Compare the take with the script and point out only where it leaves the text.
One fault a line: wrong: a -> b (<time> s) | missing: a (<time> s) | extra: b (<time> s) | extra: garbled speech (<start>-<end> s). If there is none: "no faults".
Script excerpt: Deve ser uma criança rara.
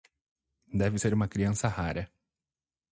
no faults